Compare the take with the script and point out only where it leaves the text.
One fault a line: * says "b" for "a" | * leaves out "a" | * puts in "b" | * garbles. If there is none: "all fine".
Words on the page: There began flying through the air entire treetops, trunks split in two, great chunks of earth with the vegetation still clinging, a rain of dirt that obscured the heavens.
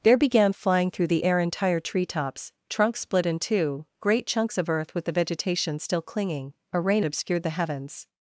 * leaves out "of dirt that"